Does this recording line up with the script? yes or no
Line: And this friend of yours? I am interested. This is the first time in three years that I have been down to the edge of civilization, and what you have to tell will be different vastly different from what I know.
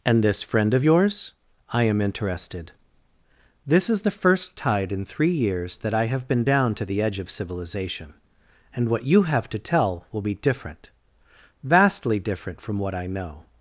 no